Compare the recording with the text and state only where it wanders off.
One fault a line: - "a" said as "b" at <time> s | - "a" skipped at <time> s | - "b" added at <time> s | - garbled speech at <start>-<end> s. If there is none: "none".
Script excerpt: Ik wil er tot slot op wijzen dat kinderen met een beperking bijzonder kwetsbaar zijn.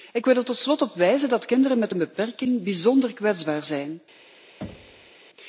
none